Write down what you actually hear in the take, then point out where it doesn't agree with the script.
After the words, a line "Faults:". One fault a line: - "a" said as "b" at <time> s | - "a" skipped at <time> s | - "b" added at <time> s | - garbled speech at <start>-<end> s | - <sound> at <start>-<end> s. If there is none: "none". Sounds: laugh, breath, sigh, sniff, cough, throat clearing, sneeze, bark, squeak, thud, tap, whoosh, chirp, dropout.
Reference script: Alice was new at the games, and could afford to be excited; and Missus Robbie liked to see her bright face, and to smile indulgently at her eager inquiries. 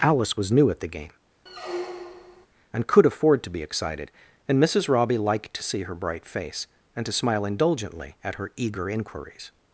Alice was new at the game, and could afford to be excited; and Missus Robbie liked to see her bright face, and to smile indulgently at her eager inquiries.
Faults:
- "games" said as "game" at 0.9 s
- squeak at 1.5-2.5 s